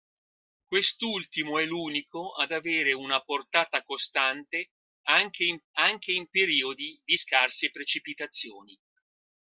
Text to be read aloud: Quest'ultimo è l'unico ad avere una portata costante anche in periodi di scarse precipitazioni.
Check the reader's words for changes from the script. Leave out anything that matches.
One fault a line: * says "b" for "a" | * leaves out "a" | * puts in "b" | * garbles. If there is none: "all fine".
* puts in "anche in"